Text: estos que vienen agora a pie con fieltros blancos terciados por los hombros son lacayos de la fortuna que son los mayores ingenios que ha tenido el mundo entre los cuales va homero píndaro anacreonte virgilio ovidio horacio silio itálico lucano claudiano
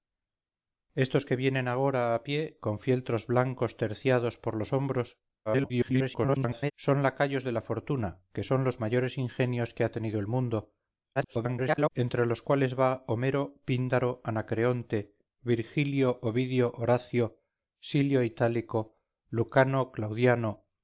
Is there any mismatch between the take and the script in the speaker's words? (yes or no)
yes